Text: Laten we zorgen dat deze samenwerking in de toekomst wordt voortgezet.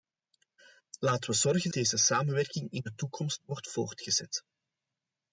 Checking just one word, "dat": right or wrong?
wrong